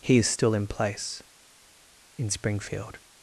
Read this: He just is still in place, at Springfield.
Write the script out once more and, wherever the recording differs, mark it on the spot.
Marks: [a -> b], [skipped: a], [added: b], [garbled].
He [skipped: just] is still in place, [at -> in] Springfield.